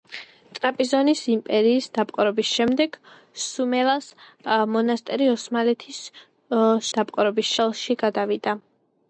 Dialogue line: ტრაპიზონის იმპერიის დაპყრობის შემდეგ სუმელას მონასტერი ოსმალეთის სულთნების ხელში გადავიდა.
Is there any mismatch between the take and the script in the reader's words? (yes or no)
yes